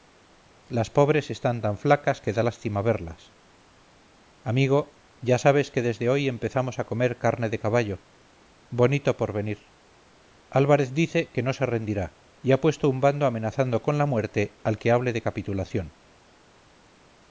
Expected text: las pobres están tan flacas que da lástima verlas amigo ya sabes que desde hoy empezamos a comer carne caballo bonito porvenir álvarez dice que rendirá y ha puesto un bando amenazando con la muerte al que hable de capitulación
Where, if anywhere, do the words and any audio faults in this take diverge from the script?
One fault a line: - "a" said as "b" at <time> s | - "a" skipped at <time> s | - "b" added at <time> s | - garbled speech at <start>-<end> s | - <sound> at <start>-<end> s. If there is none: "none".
- "de" added at 7.5 s
- "no se" added at 11.4 s